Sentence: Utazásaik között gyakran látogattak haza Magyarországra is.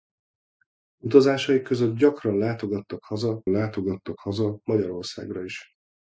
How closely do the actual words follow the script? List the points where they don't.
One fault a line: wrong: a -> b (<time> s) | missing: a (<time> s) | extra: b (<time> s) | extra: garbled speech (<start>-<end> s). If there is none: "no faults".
extra: látogattak haza (3.5 s)